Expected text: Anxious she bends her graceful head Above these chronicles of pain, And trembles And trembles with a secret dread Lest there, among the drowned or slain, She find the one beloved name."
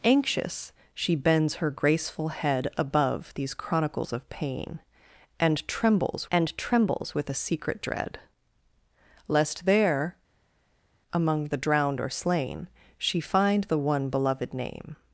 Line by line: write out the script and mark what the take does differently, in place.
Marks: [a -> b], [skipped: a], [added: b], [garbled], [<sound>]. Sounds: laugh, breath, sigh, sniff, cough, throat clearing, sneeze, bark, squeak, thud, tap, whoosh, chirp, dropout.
Anxious she bends her graceful head Above these chronicles of pain, And trembles And trembles with a secret dread Lest there, among the drowned or slain, She find the one beloved name."